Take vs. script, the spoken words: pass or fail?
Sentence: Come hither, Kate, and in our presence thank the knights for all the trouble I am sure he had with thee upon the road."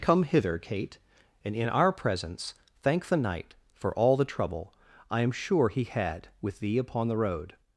fail